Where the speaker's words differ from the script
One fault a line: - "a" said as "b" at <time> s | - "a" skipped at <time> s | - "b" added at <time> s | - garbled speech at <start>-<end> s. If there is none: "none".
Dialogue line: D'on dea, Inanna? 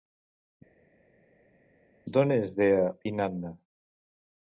- "és" added at 2.4 s